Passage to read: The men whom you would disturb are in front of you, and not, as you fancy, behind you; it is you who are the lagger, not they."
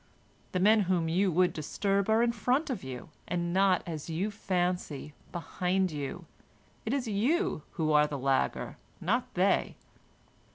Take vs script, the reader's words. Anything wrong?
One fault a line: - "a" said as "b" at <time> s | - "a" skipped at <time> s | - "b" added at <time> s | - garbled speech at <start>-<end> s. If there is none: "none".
none